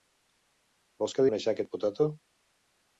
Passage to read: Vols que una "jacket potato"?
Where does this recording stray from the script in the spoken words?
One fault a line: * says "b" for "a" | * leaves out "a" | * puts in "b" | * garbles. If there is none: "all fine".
all fine